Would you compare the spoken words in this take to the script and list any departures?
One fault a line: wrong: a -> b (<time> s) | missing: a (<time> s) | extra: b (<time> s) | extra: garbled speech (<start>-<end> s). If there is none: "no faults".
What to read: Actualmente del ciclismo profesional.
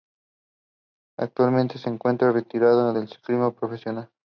extra: se encuentra retirado (1.8 s)